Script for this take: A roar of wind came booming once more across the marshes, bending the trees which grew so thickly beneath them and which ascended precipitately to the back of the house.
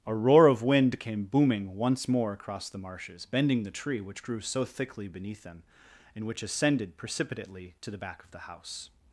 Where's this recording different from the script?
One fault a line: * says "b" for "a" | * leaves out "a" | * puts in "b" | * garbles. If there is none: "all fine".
* says "tree" for "trees"